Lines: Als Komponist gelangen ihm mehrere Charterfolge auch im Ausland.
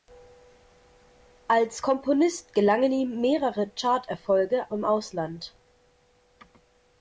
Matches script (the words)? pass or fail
fail